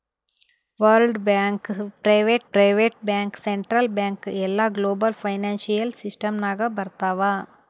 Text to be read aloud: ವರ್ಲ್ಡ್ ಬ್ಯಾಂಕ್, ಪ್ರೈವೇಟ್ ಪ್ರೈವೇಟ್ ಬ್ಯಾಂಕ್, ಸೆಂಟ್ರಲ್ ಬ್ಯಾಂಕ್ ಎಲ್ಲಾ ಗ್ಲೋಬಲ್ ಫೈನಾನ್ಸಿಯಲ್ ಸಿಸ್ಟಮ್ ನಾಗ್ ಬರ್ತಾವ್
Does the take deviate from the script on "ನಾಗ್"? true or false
false